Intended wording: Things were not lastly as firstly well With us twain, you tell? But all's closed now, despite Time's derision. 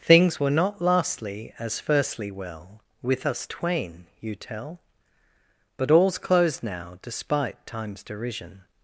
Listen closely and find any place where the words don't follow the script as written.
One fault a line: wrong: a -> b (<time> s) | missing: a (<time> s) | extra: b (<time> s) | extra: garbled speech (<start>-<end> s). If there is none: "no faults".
no faults